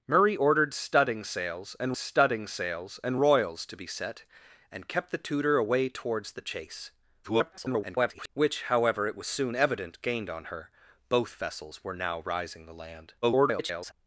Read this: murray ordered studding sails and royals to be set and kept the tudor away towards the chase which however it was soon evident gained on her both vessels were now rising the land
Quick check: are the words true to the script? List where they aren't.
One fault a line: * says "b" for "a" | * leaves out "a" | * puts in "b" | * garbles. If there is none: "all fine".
* puts in "studding sails and"
* garbles
* garbles